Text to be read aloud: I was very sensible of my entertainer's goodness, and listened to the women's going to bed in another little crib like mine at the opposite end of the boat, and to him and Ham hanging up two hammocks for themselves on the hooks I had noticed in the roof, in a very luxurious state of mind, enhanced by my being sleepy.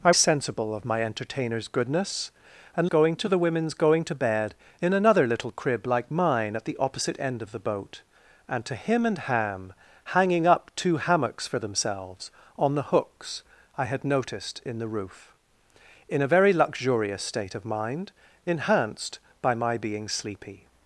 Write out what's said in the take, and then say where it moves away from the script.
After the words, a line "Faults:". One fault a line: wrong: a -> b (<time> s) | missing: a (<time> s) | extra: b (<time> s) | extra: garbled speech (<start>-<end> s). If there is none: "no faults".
I sensible of my entertainer's goodness, and going to the women's going to bed in another little crib like mine at the opposite end of the boat, and to him and Ham hanging up two hammocks for themselves on the hooks I had noticed in the roof, in a very luxurious state of mind, enhanced by my being sleepy.
Faults:
missing: was very (0.1 s)
wrong: listened -> going (2.9 s)